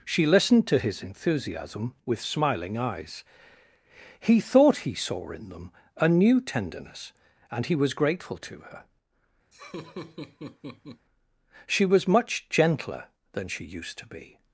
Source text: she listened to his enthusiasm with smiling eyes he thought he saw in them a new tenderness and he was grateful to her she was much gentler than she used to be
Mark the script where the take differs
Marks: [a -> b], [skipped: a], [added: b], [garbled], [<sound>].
she listened to his enthusiasm with smiling eyes he thought he saw in them a new tenderness and he was grateful to her [laugh] she was much gentler than she used to be